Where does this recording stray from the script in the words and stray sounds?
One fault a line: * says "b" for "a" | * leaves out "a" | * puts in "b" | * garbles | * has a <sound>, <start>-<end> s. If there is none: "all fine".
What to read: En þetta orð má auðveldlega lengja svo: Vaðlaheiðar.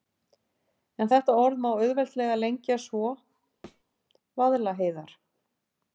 * has a thud, 3.6-3.8 s